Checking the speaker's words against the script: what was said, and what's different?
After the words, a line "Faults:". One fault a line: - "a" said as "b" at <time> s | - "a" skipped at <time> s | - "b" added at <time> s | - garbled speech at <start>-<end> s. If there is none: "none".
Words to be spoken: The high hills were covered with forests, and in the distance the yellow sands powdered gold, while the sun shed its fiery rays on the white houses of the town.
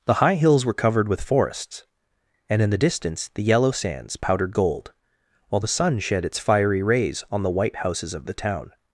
The high hills were covered with forests, and in the distance the yellow sands powdered gold, while the sun shed its fiery rays on the white houses of the town.
Faults:
none